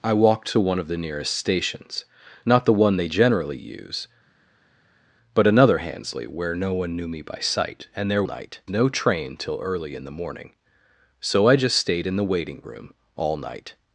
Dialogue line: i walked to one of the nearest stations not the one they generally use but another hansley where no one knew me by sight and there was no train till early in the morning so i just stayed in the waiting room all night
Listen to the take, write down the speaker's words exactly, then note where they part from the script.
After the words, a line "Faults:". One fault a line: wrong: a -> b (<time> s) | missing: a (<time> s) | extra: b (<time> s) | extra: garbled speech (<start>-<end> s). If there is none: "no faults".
i walked to one of the nearest stations not the one they generally use but another hansley where no one knew me by sight and there night no train till early in the morning so i just stayed in the waiting room all night
Faults:
wrong: was -> night (8.2 s)